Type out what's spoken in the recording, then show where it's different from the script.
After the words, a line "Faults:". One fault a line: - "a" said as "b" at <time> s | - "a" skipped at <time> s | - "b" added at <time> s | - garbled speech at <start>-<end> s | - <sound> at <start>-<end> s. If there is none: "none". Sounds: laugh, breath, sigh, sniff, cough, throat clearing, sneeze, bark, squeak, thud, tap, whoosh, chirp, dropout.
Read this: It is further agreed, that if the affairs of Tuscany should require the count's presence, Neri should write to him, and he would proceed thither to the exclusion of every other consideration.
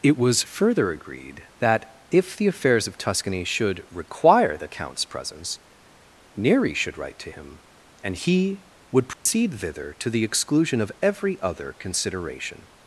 It was further agreed, that if the affairs of Tuscany should require the count's presence, Neri should write to him, and he would proceed thither to the exclusion of every other consideration.
Faults:
- "is" said as "was" at 0.2 s
- dropout at 9.1-9.3 s